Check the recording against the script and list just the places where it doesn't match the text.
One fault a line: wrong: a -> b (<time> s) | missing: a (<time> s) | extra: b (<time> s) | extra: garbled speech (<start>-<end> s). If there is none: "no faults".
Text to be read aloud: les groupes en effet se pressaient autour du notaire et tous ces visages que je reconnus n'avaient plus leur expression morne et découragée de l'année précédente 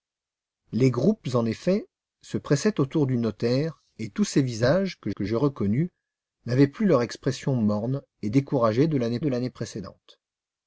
extra: que (5.1 s)
extra: de l'année (9.2 s)